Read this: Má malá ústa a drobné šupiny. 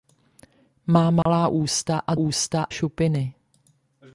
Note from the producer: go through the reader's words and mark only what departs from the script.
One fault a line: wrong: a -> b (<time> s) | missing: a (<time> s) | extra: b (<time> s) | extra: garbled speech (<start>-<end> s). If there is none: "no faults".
wrong: drobné -> ústa (2.1 s)